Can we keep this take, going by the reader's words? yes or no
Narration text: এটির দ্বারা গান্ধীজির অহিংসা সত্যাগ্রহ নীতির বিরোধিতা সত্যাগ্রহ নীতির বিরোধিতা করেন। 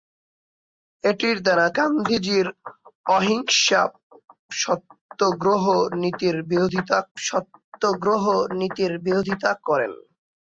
yes